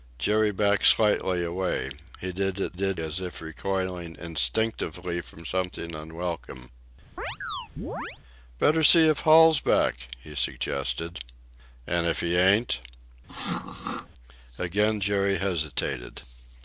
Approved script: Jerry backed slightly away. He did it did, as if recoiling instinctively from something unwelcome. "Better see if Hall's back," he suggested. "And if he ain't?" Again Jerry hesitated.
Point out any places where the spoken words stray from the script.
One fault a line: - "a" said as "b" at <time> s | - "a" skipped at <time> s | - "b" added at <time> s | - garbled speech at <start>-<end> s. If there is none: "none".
none